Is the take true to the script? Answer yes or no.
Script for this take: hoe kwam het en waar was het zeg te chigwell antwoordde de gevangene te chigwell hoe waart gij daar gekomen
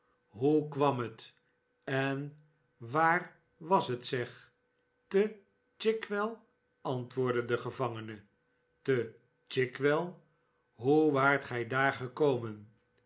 yes